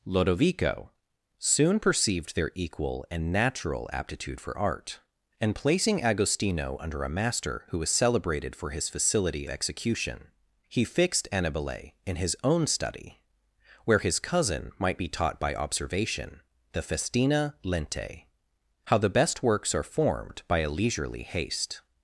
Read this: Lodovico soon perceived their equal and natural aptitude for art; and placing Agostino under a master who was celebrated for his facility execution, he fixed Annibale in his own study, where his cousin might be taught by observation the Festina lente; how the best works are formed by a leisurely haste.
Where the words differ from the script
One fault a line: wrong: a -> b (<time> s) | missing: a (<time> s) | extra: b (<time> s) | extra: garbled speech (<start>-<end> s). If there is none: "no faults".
no faults